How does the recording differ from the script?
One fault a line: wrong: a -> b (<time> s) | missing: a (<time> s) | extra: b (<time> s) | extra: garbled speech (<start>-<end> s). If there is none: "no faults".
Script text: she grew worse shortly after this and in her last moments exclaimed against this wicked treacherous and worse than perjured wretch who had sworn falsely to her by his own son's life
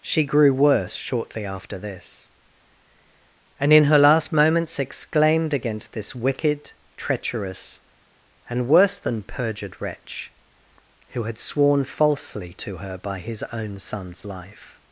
no faults